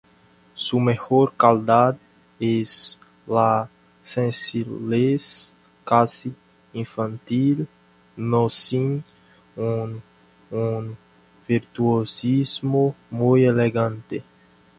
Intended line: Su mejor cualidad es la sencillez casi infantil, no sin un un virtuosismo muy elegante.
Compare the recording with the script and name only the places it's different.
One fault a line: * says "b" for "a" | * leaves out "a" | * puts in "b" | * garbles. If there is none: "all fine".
all fine